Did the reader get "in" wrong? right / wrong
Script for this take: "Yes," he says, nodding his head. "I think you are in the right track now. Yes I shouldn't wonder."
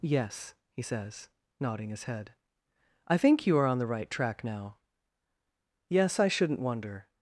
wrong